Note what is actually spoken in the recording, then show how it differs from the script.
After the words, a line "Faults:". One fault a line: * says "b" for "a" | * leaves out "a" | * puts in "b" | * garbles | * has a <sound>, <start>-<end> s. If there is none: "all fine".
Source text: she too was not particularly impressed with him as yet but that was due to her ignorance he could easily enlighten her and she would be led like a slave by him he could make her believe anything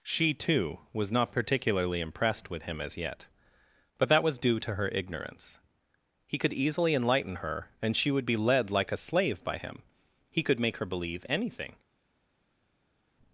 she too was not particularly impressed with him as yet but that was due to her ignorance he could easily enlighten her and she would be led like a slave by him he could make her believe anything
Faults:
all fine